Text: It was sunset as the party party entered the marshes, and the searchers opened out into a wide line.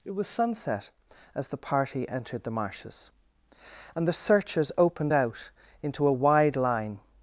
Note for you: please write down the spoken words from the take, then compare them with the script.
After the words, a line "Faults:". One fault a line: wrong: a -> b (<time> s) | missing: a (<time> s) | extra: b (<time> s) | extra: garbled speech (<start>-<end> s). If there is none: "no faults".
It was sunset as the party entered the marshes, and the searchers opened out into a wide line.
Faults:
missing: party (2.1 s)